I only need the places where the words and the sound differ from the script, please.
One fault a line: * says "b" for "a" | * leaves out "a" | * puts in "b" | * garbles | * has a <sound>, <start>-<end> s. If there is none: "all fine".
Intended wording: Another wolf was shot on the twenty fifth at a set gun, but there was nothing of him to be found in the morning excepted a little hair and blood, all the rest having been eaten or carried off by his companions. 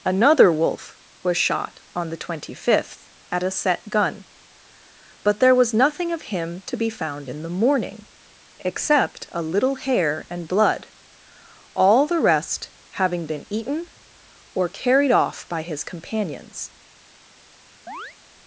* says "except" for "excepted"
* has a chirp, 17.9-18.2 s